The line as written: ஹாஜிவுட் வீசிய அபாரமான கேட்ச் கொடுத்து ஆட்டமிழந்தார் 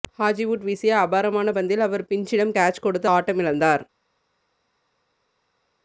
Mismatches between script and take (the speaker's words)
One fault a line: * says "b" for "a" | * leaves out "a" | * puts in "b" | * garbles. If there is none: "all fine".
* puts in "பந்தில் அவர் பின்ச்சிடம்"